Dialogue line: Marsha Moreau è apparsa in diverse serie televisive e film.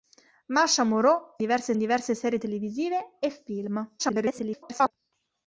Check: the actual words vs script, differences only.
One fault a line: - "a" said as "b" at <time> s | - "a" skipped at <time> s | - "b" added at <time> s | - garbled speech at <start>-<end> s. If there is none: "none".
- "apparsa" said as "diverse" at 1.4 s
- garbled speech at 4.0-4.9 s